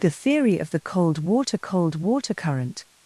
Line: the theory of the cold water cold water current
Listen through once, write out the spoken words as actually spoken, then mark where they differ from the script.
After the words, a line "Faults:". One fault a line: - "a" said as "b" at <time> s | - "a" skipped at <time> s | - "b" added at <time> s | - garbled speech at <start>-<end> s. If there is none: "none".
the theory of the cold water cold water current
Faults:
none